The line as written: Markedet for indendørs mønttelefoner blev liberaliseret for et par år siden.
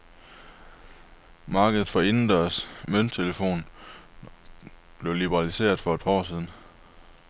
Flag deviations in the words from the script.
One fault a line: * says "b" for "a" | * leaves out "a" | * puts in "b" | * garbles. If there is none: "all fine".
all fine